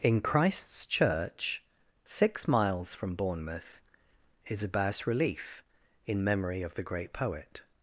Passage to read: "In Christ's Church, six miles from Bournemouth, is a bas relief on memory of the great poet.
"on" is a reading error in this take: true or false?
true